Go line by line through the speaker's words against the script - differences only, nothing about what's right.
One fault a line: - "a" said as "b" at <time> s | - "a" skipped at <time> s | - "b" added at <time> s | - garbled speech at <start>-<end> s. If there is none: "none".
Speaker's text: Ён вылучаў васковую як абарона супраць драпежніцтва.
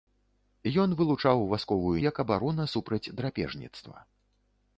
none